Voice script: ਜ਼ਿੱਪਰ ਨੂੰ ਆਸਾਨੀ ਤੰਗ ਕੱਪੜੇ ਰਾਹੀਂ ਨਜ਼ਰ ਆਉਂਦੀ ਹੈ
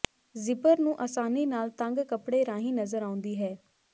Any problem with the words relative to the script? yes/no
yes